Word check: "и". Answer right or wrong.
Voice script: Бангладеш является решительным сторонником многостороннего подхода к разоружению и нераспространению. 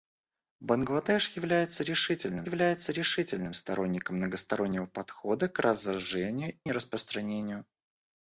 wrong